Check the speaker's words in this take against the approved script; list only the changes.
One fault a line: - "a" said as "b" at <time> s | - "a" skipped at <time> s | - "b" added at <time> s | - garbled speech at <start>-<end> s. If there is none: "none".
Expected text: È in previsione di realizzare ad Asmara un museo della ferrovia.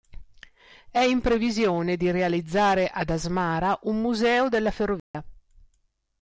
none